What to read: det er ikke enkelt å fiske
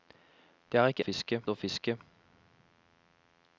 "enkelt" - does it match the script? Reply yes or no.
no